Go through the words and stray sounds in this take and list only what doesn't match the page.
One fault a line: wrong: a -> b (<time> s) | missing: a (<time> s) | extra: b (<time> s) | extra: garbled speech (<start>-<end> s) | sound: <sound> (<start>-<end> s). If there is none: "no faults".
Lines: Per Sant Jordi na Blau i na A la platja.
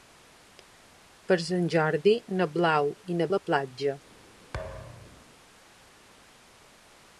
sound: thud (4.5-5.3 s)